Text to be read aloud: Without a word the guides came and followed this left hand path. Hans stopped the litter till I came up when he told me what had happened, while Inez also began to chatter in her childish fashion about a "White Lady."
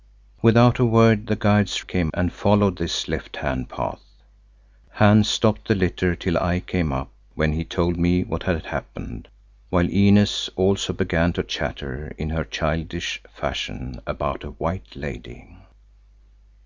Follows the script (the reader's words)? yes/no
yes